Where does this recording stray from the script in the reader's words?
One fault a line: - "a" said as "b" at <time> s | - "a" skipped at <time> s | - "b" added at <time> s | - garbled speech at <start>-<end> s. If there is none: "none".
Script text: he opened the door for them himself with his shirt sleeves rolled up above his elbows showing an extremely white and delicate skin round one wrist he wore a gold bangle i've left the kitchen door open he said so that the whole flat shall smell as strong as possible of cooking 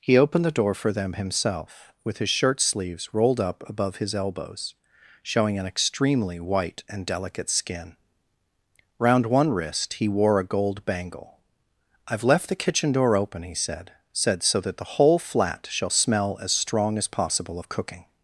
- "said" added at 14.1 s